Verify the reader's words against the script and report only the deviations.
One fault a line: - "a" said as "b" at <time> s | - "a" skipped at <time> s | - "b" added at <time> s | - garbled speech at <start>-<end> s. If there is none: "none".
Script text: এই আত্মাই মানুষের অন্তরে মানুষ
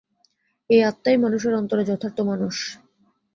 - "যথার্থ" added at 1.9 s